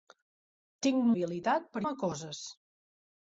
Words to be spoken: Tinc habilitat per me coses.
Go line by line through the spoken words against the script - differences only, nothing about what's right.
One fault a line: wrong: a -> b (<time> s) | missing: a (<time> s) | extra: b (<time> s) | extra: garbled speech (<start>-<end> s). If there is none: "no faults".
no faults